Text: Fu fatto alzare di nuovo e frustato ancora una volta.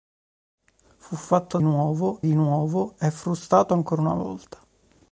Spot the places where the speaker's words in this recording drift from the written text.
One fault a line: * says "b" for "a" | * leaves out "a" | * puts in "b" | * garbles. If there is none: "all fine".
* says "nuovo" for "alzare"